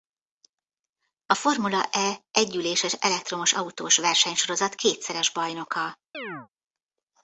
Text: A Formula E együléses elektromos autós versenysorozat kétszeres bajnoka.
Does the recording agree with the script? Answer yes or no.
yes